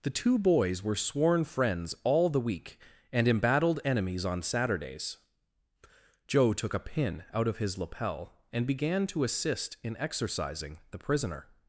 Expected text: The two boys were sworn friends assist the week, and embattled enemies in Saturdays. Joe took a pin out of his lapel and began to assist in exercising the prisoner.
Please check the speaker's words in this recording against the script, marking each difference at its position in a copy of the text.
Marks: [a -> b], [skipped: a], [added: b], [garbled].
The two boys were sworn friends [assist -> all] the week, and embattled enemies [in -> on] Saturdays. Joe took a pin out of his lapel and began to assist in exercising the prisoner.